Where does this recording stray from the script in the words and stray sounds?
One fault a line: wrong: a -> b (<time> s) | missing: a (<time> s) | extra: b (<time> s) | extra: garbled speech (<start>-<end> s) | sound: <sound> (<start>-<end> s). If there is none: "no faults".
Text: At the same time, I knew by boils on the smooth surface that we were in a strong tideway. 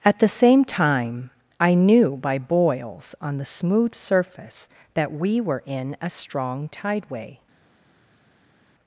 no faults